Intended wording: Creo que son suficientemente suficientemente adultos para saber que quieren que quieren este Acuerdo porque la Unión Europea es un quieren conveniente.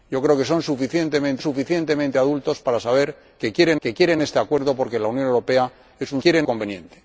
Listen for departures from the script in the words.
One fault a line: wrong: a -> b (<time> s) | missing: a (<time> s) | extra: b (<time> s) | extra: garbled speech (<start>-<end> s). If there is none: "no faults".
no faults